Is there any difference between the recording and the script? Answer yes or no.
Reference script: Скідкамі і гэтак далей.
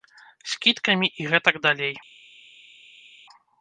no